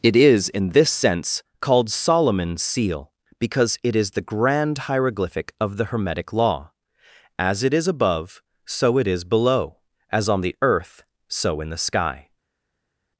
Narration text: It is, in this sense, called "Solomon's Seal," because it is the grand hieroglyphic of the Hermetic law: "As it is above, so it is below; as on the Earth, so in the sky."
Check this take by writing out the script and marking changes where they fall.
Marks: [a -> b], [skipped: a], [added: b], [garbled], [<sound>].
It is, in this sense, called "Solomon's Seal," because it is the grand hieroglyphic of the Hermetic law: "As it is above, so it is below; as on the Earth, so in the sky."